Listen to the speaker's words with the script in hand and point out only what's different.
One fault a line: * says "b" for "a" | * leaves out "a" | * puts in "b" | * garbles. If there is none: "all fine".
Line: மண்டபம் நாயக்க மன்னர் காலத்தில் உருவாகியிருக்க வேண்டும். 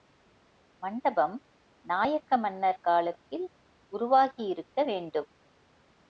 all fine